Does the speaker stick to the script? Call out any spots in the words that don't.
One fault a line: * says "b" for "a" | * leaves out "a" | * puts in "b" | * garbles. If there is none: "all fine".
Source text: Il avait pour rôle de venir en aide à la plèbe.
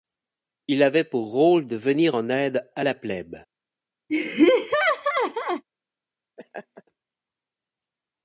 all fine